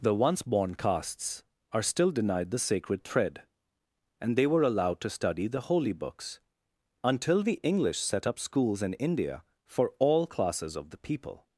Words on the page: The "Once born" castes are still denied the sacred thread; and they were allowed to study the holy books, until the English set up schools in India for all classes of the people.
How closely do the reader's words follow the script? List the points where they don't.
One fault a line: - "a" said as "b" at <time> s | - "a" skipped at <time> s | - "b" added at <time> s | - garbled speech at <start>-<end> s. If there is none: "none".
none